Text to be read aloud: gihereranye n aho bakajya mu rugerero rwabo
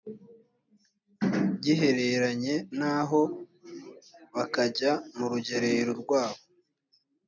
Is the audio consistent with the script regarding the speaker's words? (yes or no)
yes